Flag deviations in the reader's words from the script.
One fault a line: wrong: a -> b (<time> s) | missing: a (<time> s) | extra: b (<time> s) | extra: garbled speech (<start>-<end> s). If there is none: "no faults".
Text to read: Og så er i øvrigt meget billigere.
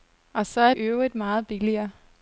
no faults